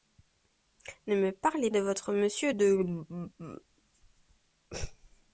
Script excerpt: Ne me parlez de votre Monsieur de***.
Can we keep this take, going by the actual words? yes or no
yes